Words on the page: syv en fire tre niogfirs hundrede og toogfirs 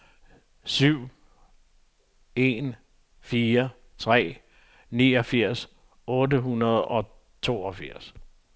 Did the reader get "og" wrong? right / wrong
right